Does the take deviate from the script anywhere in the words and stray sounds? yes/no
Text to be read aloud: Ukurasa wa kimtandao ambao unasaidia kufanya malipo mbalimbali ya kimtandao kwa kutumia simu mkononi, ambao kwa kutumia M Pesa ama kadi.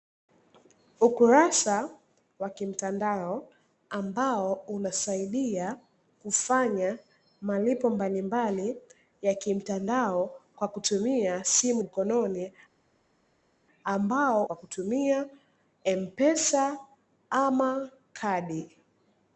no